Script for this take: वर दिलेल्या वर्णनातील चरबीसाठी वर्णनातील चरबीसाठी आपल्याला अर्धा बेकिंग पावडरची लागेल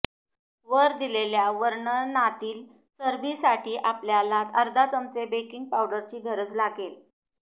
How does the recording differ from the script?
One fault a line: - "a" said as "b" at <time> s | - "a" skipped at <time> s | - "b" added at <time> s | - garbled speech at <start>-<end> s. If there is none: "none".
- "वर्णनातील चरबीसाठी" skipped at 3.7 s
- "चमचे" added at 4.9 s
- "गरज" added at 6.2 s